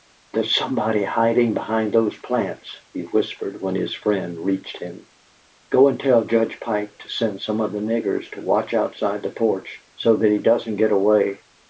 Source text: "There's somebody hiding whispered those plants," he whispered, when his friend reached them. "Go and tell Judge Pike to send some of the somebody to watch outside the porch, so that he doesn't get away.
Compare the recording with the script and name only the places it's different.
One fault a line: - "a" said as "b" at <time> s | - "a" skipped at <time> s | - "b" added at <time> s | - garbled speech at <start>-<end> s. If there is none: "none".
- "whispered" said as "behind" at 1.5 s
- "them" said as "him" at 4.8 s
- "somebody" said as "niggers" at 7.8 s